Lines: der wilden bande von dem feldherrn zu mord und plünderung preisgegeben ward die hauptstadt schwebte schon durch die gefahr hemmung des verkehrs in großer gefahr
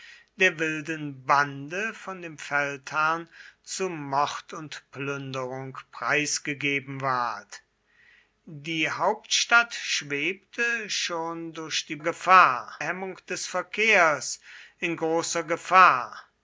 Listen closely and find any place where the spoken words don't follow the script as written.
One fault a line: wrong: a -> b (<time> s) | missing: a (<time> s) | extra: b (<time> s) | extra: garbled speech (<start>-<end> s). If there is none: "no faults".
no faults